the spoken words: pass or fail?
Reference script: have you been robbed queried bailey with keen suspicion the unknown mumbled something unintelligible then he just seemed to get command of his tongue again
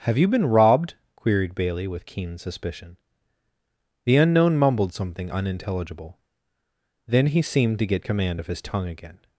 fail